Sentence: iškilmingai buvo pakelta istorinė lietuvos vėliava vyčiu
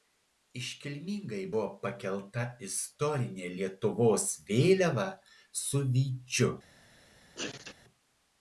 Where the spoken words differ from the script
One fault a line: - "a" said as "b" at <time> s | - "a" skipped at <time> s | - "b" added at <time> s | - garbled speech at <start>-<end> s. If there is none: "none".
- "su" added at 5.7 s